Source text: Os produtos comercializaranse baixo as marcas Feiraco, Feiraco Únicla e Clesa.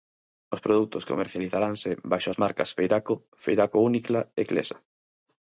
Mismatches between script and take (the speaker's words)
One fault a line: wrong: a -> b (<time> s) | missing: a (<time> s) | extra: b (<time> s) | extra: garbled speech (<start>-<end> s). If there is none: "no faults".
no faults